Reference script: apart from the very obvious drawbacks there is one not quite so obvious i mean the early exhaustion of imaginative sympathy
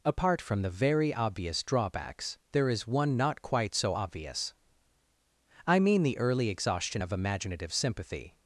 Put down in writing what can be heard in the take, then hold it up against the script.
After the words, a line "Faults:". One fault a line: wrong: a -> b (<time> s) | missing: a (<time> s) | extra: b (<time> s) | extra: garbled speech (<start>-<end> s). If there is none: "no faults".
apart from the very obvious drawbacks there is one not quite so obvious i mean the early exhaustion of imaginative sympathy
Faults:
no faults